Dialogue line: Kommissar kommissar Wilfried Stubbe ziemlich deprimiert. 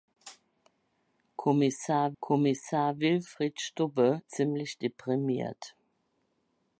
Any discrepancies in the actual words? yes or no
no